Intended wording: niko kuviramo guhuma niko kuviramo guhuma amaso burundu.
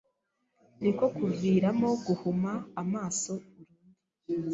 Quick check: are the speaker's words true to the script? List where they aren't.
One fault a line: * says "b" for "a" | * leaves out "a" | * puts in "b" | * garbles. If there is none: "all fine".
* leaves out "niko kuviramo guhuma"